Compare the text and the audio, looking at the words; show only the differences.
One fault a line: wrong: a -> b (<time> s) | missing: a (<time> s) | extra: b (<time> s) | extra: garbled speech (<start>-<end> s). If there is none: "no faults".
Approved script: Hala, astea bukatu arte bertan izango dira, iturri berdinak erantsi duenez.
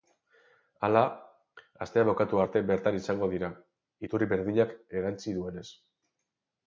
no faults